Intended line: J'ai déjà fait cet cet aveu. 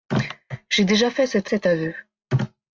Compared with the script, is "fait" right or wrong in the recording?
right